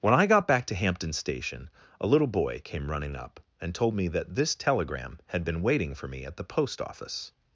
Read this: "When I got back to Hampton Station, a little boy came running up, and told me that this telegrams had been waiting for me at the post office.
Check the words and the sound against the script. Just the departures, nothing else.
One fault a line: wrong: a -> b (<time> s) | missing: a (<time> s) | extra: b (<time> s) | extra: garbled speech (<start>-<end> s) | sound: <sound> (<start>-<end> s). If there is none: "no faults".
wrong: telegrams -> telegram (4.5 s)